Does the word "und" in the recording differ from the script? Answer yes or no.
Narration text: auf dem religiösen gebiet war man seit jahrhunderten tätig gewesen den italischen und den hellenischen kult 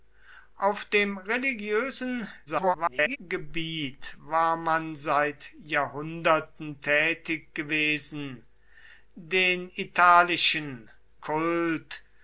yes